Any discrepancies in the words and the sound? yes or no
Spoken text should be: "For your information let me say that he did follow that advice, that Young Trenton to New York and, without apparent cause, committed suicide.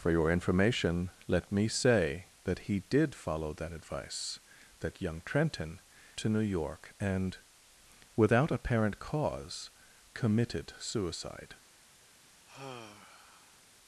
yes